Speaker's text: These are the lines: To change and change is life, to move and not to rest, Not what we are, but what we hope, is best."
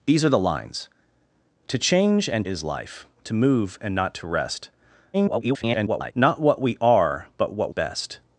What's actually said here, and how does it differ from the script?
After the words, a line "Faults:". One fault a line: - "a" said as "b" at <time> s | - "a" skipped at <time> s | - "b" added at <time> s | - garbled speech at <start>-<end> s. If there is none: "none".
These are the lines: To change and is life, to move and not to rest, [garbled] Not what we are, but what best."
Faults:
- "change" skipped at 2.5 s
- garbled speech at 5.1-6.1 s
- "we hope is" skipped at 7.7 s